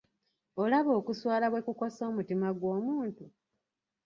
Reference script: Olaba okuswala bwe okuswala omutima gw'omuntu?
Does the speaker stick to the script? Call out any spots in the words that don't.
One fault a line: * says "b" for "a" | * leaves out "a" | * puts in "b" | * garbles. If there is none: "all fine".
* says "kukosa" for "okuswala"